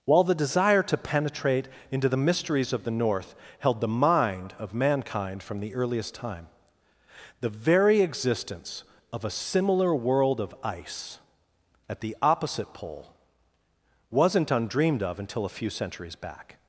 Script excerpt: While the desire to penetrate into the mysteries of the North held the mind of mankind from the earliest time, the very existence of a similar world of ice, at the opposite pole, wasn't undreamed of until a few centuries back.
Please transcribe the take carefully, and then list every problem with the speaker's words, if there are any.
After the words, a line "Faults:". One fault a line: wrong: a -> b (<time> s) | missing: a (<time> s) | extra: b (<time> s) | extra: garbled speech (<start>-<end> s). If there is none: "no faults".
While the desire to penetrate into the mysteries of the North held the mind of mankind from the earliest time, the very existence of a similar world of ice, at the opposite pole, wasn't undreamed of until a few centuries back.
Faults:
no faults